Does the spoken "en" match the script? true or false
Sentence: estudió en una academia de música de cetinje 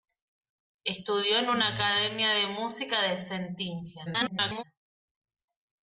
true